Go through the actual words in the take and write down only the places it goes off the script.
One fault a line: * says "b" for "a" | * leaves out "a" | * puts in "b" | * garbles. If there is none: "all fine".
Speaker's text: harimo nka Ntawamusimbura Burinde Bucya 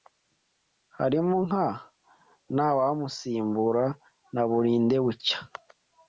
* puts in "na"